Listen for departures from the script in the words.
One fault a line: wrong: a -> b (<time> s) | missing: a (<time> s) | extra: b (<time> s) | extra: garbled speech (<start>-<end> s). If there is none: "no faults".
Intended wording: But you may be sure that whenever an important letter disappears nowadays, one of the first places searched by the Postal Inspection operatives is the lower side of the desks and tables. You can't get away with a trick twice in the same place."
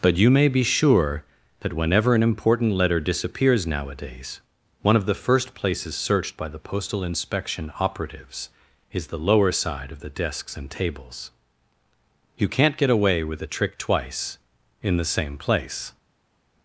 no faults